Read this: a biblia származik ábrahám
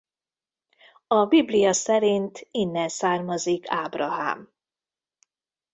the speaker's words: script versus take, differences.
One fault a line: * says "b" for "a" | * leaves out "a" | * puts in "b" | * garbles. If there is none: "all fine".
* puts in "szerint innen"